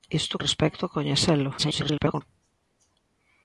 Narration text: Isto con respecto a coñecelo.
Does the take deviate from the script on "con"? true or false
true